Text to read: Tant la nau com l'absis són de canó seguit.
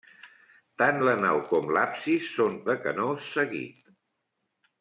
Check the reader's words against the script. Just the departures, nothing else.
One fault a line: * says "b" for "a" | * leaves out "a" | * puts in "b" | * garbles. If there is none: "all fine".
all fine